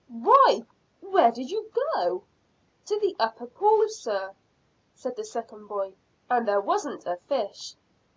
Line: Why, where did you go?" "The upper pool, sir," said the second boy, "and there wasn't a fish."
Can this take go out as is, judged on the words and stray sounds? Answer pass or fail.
fail